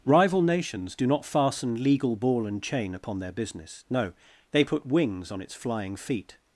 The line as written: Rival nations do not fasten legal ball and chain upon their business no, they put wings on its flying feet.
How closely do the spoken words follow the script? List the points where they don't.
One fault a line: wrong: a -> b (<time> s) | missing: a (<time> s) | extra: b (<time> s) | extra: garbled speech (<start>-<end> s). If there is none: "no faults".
no faults